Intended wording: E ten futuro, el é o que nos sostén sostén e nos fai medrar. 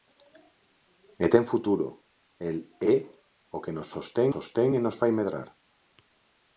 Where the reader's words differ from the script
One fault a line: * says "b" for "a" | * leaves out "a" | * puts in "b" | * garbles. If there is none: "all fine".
all fine